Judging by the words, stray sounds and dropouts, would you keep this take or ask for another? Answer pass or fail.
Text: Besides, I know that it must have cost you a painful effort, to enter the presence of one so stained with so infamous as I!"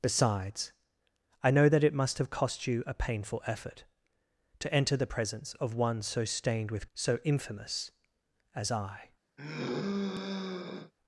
fail